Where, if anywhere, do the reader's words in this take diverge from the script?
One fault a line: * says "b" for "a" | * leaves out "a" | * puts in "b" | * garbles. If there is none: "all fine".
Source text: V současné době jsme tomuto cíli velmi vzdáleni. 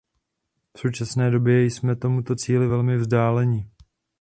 all fine